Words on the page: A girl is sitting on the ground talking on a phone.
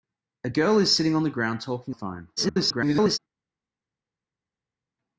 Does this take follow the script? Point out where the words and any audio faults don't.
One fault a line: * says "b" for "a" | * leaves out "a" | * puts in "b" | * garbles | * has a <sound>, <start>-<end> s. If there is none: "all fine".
* leaves out "on"
* garbles